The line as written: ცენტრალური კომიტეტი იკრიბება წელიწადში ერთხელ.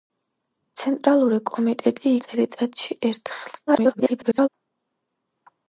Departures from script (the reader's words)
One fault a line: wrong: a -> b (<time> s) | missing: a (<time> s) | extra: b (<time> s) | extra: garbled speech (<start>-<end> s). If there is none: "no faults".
missing: იკრიბება (2.1 s)
extra: garbled speech (3.7-4.5 s)